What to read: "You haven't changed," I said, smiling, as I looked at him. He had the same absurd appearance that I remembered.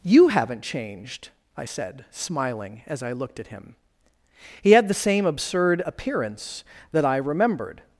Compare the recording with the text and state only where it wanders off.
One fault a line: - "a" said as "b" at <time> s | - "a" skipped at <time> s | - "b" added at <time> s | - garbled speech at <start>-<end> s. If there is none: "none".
none